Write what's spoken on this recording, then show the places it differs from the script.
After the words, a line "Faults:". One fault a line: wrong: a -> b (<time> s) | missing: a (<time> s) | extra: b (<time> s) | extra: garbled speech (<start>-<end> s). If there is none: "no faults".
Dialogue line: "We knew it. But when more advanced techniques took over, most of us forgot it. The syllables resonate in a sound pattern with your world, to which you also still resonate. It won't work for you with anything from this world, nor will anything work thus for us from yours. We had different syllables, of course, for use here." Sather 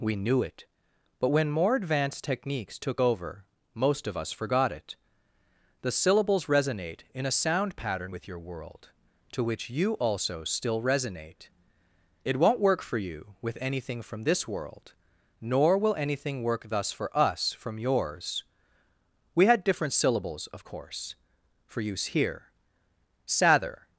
"We knew it. But when more advanced techniques took over, most of us forgot it. The syllables resonate in a sound pattern with your world, to which you also still resonate. It won't work for you with anything from this world, nor will anything work thus for us from yours. We had different syllables, of course, for use here." Sather
Faults:
no faults